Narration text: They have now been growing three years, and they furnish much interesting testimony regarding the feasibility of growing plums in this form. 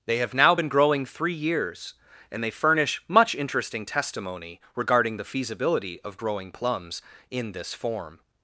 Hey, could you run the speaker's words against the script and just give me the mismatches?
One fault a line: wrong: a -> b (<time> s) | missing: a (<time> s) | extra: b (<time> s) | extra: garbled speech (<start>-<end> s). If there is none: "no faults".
no faults